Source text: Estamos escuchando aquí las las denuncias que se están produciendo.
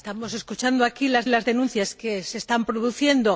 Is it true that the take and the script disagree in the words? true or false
false